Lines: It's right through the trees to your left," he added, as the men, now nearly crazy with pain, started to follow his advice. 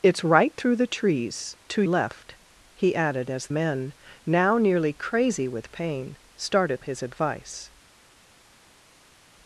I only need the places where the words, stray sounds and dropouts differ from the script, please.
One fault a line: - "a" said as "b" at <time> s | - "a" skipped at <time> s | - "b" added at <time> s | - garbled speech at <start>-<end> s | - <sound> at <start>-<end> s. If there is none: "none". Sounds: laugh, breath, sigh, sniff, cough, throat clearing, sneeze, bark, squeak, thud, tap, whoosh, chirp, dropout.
- "your" skipped at 1.8 s
- "the" skipped at 3.5 s
- "to follow" skipped at 6.8 s